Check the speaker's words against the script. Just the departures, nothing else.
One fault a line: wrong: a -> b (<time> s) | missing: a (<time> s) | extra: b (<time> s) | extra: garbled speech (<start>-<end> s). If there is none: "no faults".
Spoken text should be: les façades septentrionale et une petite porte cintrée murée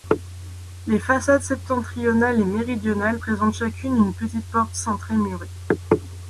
extra: méridionale présentent chacune (2.4 s)